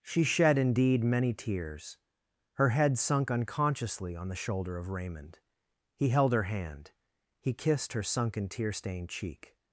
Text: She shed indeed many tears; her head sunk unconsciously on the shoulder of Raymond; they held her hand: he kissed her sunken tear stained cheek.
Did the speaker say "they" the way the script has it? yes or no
no